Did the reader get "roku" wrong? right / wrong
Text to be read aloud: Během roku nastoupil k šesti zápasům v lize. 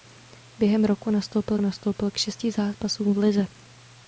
right